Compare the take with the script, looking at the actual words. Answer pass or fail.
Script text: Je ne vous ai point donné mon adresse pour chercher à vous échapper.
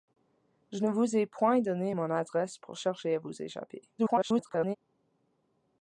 fail